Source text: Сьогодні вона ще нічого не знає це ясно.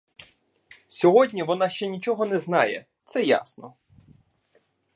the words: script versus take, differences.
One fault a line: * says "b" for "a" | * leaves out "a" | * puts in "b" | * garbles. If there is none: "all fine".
all fine